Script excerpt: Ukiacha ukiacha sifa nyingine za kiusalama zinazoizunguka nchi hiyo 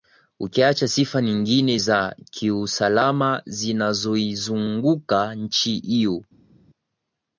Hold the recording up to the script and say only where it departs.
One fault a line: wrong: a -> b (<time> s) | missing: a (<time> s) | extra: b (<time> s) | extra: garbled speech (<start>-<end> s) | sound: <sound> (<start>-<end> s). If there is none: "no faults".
missing: ukiacha (0.9 s)